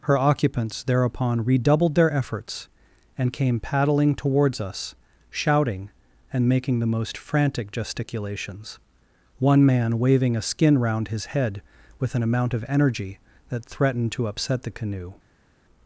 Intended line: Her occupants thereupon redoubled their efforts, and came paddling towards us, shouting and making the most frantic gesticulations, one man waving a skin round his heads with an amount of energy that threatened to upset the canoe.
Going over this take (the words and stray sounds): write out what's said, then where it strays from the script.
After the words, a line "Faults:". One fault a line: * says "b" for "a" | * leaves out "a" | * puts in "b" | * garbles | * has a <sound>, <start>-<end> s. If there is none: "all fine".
Her occupants thereupon redoubled their efforts, and came paddling towards us, shouting and making the most frantic gesticulations, one man waving a skin round his head with an amount of energy that threatened to upset the canoe.
Faults:
* says "head" for "heads"